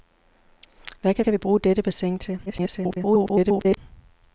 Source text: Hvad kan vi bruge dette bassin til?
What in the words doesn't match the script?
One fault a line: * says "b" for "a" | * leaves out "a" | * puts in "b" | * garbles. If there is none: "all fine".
* puts in "kan"
* garbles